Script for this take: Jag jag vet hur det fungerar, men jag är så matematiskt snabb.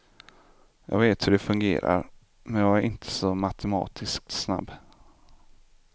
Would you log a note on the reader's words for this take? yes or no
yes